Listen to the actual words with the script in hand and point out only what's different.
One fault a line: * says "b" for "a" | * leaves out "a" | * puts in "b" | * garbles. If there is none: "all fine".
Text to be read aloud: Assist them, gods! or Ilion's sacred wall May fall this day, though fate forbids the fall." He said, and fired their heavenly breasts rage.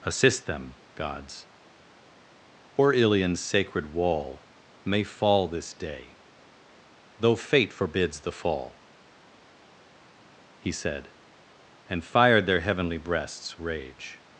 all fine